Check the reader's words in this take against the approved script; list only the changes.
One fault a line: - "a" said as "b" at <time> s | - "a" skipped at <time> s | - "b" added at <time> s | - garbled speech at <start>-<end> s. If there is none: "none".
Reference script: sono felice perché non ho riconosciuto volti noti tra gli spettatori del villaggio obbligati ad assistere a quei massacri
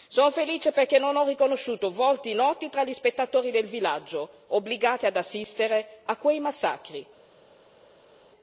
none